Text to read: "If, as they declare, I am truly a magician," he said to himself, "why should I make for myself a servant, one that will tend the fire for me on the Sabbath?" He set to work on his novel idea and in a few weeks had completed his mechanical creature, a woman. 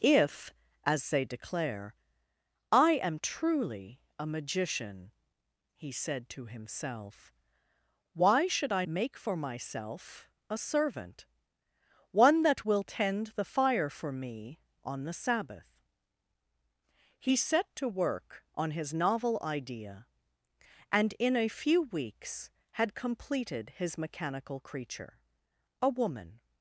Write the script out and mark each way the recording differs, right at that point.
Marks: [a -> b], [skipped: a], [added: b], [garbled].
"If, as they declare, I am truly a magician," he said to himself, "why should I make for myself a servant, one that will tend the fire for me on the Sabbath?" He set to work on his novel idea and in a few weeks had completed his mechanical creature, a woman.